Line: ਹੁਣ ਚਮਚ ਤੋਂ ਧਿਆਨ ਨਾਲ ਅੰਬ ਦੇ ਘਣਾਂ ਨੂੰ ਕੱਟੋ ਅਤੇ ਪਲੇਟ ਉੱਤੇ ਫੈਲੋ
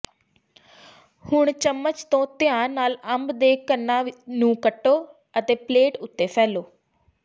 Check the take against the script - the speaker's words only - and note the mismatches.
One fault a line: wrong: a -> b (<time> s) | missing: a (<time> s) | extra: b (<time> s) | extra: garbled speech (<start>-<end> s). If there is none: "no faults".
no faults